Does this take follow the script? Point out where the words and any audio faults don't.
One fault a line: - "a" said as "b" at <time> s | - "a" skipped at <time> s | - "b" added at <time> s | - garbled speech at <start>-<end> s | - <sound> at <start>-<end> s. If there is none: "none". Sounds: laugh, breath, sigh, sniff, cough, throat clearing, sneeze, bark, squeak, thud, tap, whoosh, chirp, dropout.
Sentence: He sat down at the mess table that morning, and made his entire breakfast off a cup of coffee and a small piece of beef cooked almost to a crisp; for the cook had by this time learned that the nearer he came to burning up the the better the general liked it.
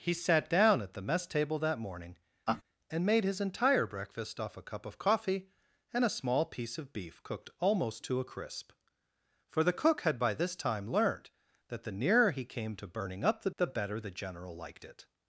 - laugh at 2.5-2.6 s